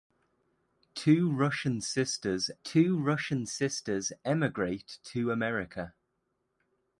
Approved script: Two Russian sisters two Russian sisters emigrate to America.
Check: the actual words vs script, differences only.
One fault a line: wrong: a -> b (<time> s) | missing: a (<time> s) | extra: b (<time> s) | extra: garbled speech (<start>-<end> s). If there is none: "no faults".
no faults